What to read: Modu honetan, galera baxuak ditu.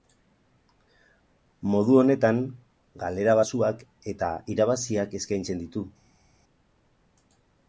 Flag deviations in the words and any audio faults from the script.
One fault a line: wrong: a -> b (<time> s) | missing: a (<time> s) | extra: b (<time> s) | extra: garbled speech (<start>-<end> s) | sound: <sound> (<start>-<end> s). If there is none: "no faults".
extra: eta irabaziak eskaintzen (4.2 s)